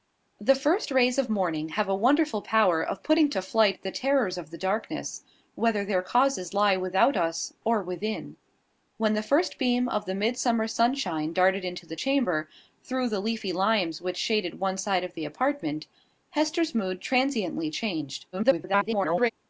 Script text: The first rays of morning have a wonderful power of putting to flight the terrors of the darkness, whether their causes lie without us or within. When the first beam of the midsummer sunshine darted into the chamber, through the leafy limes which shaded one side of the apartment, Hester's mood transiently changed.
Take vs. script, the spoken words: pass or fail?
fail